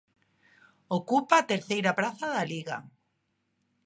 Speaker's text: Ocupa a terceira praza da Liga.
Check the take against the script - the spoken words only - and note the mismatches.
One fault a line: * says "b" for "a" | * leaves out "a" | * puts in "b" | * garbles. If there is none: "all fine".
all fine